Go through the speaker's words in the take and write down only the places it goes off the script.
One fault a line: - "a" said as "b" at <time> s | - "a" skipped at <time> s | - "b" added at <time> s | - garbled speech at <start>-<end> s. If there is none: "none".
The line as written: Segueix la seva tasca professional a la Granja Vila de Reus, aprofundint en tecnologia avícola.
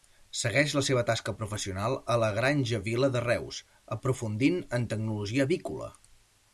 none